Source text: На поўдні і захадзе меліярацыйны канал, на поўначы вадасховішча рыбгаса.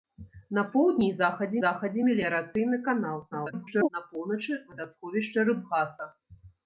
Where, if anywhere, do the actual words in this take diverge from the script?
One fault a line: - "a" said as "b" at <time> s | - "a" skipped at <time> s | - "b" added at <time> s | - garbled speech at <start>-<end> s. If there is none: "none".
- "захадзе" added at 1.6 s
- garbled speech at 3.3-3.9 s